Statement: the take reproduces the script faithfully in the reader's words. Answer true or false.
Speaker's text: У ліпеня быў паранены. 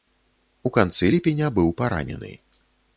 false